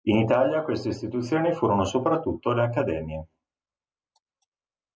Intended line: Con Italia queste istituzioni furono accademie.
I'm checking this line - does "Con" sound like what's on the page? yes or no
no